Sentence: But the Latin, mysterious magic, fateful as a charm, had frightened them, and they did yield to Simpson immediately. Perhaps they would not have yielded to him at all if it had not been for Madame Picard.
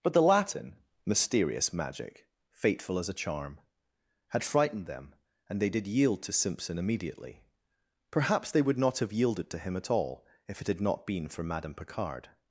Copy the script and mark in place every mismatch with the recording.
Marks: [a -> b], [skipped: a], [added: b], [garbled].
But the Latin, mysterious magic, fateful as a charm, had frightened them, and they did yield to Simpson immediately. Perhaps they would not have yielded to him at all if it had not been for Madame Picard.